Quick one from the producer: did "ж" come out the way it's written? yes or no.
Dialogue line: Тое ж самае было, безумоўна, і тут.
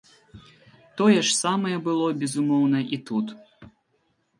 yes